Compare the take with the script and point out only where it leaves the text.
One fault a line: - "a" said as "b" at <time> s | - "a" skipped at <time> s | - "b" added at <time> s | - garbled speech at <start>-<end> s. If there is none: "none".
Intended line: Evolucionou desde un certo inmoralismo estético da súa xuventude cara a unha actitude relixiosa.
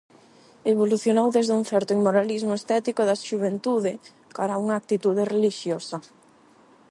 - "súa" skipped at 3.2 s